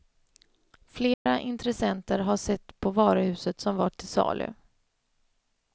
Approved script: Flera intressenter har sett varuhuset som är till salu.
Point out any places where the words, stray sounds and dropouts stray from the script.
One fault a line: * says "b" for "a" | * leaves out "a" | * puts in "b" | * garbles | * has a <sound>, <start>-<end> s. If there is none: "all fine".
* has a dropout, 1.1-1.3 s
* puts in "på"
* says "var" for "är"